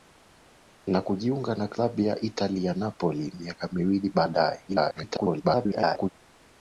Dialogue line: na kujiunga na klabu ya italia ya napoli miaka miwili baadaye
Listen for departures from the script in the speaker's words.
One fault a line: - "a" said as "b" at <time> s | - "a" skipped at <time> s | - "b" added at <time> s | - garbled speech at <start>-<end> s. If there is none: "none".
- garbled speech at 4.7-6.1 s